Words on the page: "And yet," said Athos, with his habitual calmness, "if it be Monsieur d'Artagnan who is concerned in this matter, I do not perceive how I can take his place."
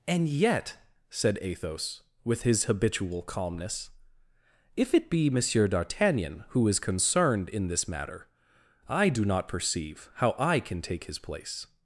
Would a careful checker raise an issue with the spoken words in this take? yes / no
no